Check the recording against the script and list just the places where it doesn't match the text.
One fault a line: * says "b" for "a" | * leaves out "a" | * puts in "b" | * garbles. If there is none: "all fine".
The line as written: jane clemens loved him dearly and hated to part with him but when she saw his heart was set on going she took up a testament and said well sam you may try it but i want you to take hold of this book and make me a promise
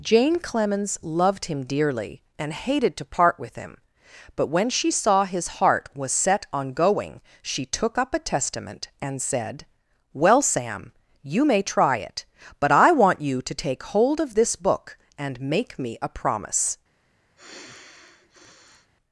all fine